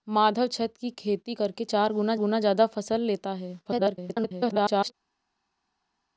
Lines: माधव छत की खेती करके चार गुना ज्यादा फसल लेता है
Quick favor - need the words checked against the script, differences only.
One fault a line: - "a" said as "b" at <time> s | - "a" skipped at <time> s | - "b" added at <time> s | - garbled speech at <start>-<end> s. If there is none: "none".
- "गुना" added at 2.2 s
- garbled speech at 3.6-4.9 s